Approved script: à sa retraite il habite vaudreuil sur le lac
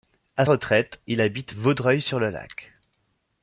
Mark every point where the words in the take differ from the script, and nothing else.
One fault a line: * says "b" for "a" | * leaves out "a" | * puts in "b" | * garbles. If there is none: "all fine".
* leaves out "sa"